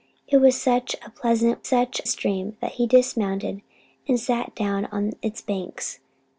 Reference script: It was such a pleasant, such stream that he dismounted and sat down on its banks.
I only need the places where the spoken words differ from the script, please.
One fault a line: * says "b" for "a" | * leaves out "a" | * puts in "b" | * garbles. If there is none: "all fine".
all fine